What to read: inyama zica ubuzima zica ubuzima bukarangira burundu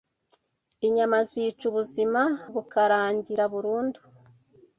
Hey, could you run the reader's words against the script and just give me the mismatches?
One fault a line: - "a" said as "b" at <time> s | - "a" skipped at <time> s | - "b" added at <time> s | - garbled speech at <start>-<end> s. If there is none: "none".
- "zica ubuzima" skipped at 2.2 s